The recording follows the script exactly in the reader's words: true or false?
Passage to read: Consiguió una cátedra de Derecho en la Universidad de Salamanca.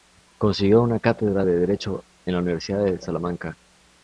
true